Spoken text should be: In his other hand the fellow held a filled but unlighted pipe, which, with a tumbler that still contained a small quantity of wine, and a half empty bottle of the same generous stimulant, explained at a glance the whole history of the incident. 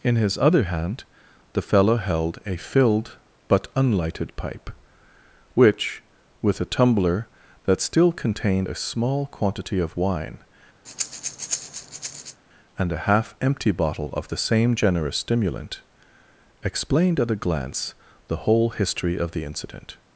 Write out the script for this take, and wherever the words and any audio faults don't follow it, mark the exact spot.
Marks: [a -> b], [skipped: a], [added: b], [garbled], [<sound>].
In his other hand the fellow held a filled but unlighted pipe, which, with a tumbler that still contained a small quantity of wine, [breath] and a half empty bottle of the same generous stimulant, explained at a glance the whole history of the incident.